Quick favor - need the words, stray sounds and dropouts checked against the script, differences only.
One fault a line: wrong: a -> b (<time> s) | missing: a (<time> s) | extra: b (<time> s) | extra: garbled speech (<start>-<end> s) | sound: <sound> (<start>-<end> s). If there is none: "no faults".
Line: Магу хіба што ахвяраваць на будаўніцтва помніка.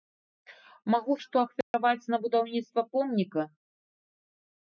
missing: хіба (1.2 s)
sound: dropout (1.6-1.7 s)